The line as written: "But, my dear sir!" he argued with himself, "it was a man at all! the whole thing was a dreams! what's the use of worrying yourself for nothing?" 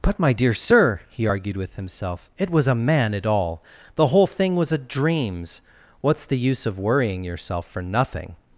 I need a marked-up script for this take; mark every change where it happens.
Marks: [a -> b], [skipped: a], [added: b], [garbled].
"But, my dear sir!" he argued with himself, "it was a man at all! the whole thing was a dreams! what's the use of worrying yourself for nothing?"